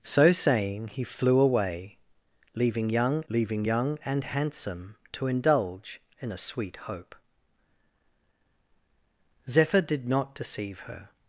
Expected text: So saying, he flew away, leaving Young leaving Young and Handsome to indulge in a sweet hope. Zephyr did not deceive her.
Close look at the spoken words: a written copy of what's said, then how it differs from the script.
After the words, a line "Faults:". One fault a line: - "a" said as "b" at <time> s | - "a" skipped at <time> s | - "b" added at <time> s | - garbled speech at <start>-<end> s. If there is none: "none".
So saying, he flew away, leaving Young leaving Young and Handsome to indulge in a sweet hope. Zephyr did not deceive her.
Faults:
none